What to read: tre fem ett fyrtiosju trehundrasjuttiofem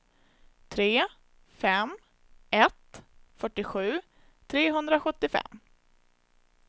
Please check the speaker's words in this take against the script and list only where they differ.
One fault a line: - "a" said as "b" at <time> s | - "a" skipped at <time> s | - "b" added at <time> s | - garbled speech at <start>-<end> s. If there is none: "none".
none